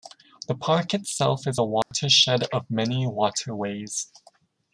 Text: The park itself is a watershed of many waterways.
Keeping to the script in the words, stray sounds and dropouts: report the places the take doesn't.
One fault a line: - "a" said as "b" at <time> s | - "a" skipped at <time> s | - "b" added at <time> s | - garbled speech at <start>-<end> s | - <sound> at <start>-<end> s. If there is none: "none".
- dropout at 1.8-1.9 s